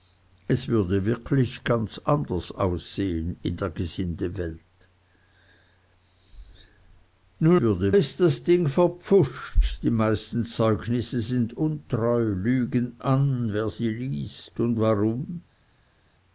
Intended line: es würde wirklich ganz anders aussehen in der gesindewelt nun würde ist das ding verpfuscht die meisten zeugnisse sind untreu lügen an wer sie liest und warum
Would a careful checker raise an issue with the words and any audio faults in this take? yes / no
no